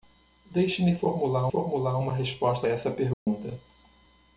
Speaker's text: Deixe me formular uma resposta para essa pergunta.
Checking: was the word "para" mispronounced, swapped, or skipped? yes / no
yes